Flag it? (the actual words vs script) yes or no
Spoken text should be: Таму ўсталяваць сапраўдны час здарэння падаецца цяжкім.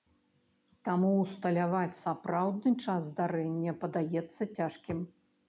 no